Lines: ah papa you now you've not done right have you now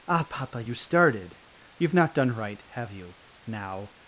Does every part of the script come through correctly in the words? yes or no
no